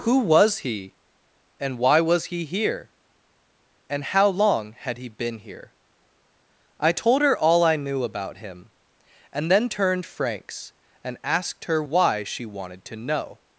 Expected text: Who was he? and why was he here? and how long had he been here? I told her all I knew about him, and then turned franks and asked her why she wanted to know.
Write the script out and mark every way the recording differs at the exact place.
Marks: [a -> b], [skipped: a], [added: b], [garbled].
Who was he? and why was he here? and how long had he been here? I told her all I knew about him, and then turned franks and asked her why she wanted to know.